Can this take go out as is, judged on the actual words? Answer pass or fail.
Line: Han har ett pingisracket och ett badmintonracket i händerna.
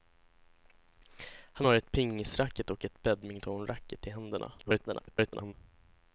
fail